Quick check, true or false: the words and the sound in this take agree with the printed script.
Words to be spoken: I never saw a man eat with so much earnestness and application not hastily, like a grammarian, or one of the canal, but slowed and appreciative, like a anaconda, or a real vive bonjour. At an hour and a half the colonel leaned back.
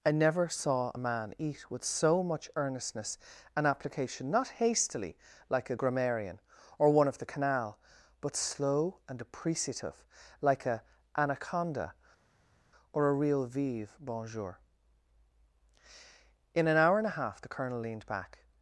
false